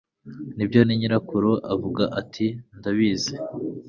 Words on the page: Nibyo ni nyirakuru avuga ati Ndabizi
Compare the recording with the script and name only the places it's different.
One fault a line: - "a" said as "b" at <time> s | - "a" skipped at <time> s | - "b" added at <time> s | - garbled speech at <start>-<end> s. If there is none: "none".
none